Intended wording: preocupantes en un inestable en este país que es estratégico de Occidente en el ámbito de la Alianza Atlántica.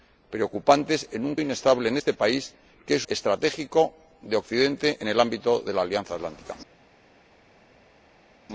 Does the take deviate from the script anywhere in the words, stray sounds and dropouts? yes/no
no